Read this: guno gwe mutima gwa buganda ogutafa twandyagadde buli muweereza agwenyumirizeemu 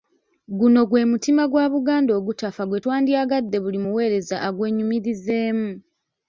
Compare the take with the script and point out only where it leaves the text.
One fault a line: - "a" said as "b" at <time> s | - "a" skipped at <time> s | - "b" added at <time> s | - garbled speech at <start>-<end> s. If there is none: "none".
- "gwe" added at 2.6 s